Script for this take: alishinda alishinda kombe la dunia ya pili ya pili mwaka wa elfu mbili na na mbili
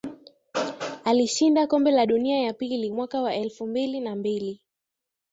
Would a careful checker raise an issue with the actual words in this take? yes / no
yes